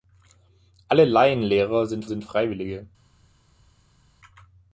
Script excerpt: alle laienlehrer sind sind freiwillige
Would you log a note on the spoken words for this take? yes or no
no